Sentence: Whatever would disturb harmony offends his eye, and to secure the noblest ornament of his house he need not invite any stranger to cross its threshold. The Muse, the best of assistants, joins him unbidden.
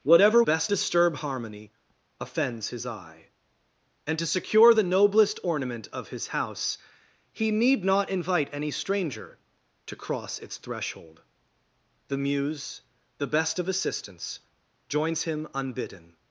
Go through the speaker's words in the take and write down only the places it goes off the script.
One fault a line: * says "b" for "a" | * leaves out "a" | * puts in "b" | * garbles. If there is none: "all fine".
* says "best" for "would"